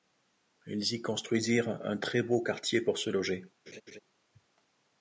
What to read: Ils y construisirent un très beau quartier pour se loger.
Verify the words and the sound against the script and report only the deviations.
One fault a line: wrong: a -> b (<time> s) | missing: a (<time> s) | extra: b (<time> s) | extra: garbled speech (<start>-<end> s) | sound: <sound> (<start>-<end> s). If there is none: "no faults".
sound: laugh (3.7-4.0 s)